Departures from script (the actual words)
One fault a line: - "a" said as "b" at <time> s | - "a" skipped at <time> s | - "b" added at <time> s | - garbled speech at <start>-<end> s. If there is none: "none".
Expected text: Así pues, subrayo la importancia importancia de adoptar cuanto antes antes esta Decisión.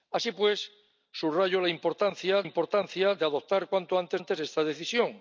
none